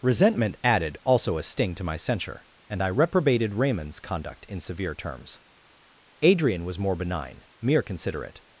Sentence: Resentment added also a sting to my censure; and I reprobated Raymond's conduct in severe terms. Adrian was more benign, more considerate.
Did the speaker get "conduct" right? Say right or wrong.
right